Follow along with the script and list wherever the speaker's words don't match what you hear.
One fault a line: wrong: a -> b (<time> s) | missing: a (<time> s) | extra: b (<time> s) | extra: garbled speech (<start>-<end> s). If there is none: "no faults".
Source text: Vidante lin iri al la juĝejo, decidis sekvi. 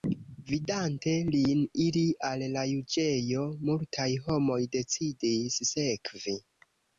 extra: multaj homoj (3.7 s)